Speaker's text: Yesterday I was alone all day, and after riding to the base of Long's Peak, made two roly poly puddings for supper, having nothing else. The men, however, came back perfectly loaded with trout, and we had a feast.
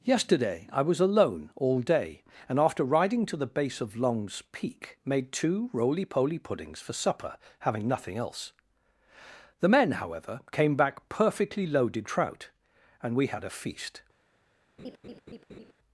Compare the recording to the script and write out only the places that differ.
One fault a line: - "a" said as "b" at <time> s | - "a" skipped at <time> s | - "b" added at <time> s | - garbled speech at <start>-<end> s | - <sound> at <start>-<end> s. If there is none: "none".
- "with" skipped at 12.1 s
- laugh at 14.8-15.7 s